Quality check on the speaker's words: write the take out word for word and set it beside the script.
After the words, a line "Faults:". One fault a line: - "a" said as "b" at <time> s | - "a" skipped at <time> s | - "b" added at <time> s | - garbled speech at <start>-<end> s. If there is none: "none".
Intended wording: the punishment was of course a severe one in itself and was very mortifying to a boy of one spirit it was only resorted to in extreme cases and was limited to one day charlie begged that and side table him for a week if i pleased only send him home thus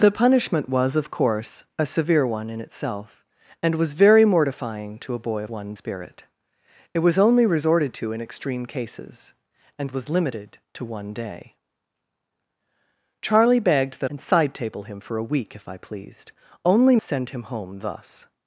the punishment was of course a severe one in itself and was very mortifying to a boy of one spirit it was only resorted to in extreme cases and was limited to one day charlie begged that and side table him for a week if i pleased only send him home thus
Faults:
none